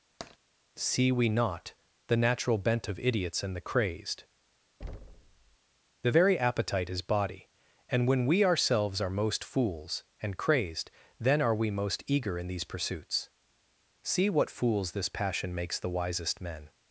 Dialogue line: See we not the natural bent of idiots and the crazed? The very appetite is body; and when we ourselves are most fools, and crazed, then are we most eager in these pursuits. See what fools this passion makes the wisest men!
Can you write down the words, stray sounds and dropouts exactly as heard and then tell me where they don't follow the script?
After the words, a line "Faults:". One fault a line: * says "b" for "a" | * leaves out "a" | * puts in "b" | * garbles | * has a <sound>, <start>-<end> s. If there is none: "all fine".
See we not the natural bent of idiots and the crazed? The very appetite is body; and when we ourselves are most fools, and crazed, then are we most eager in these pursuits. See what fools this passion makes the wisest men!
Faults:
* has a tap, 0.2-0.4 s
* has a thud, 4.8-5.6 s